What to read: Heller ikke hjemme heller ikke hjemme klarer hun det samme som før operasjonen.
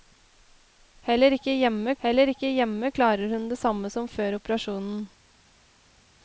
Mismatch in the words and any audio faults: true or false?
false